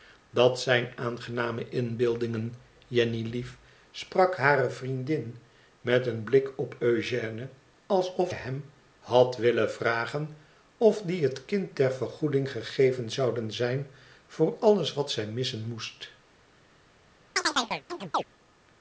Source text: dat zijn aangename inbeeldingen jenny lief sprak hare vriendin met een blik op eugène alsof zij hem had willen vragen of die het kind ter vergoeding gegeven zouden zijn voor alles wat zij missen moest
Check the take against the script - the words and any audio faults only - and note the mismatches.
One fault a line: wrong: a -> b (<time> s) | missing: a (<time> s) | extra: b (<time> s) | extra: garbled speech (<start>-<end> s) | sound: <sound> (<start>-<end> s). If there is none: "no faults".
missing: zij (8.3 s)
sound: chirp (17.4-18.2 s)